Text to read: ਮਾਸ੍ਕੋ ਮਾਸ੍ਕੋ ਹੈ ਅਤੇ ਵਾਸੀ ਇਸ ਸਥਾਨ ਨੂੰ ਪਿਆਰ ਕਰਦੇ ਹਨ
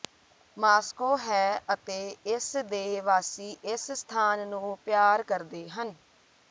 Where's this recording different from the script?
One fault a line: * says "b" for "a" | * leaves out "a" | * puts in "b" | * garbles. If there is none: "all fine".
* leaves out "ਮਾਸ੍ਕੋ"
* puts in "ਇਸ ਦੇ"